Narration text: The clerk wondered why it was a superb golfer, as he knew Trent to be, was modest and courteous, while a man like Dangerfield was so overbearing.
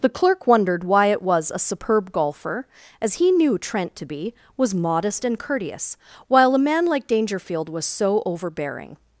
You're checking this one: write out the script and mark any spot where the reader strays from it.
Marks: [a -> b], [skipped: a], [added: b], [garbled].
The clerk wondered why it was a superb golfer, as he knew Trent to be, was modest and courteous, while a man like Dangerfield was so overbearing.